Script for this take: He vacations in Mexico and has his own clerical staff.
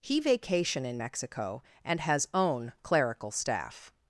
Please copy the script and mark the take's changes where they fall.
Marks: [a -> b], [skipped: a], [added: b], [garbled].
He [vacations -> vacation] in Mexico and has [skipped: his] own clerical staff.